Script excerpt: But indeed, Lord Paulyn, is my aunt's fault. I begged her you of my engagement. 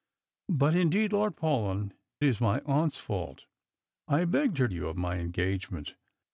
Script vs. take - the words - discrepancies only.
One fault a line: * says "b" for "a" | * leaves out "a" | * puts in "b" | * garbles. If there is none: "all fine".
all fine